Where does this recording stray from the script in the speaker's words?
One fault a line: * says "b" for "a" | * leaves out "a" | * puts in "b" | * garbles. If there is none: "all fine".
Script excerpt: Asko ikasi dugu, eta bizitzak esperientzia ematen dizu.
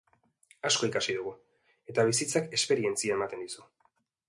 all fine